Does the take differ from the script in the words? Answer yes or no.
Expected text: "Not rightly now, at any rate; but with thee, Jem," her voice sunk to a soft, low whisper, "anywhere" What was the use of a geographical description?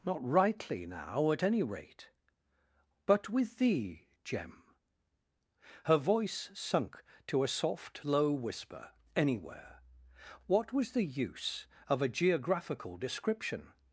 no